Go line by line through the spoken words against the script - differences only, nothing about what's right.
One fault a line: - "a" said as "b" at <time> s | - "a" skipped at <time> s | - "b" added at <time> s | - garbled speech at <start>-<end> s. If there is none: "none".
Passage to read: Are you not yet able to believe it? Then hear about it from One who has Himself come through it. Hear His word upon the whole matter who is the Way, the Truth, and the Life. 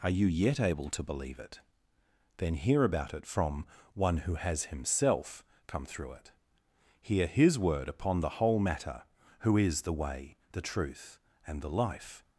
- "not" skipped at 0.3 s